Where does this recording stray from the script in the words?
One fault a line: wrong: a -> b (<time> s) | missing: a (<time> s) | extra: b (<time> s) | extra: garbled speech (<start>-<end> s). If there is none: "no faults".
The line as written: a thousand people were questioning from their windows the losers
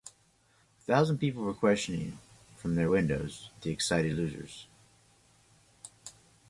extra: excited (3.7 s)